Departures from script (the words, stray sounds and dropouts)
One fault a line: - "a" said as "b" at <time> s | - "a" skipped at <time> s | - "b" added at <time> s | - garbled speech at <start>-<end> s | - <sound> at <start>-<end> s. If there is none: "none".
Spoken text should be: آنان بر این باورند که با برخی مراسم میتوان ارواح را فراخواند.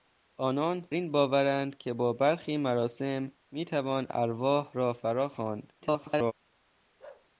- "بر" skipped at 0.9 s
- garbled speech at 5.8-6.3 s
- bark at 7.0-7.3 s